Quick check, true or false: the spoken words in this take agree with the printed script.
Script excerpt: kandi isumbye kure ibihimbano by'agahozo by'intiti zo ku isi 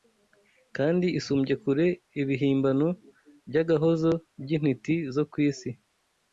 true